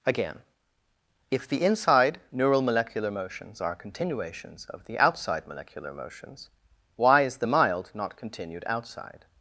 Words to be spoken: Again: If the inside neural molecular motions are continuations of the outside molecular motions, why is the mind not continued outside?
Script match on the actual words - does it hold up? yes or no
no